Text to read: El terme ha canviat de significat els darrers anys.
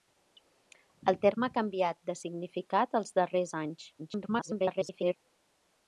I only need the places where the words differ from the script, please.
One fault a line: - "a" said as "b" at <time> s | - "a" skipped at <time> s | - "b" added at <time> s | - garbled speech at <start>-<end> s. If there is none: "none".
- garbled speech at 4.0-5.2 s